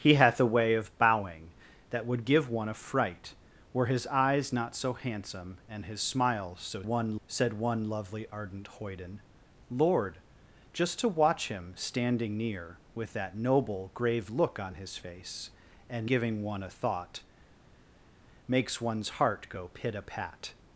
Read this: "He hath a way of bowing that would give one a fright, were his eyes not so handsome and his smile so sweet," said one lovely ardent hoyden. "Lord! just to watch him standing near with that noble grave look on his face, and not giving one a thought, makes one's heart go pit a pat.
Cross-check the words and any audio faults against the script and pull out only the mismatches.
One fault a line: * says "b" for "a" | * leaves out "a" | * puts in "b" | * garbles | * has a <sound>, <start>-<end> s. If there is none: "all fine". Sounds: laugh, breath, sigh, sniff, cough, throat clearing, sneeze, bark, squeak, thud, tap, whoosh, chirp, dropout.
* says "one" for "sweet"
* leaves out "not"